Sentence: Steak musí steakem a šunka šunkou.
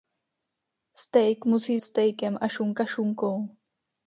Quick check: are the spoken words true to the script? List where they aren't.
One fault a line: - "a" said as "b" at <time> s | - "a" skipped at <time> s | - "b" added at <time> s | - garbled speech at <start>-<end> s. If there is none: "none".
none